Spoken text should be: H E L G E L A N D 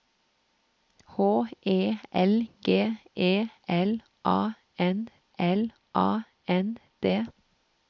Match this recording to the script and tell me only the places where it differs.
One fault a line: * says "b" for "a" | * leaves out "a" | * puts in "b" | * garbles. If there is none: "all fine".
* puts in "L A N"